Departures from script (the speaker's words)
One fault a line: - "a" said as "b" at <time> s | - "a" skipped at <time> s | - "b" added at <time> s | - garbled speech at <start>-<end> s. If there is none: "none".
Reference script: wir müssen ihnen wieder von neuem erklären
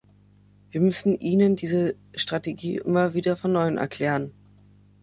- "diese strategie immer" added at 1.6 s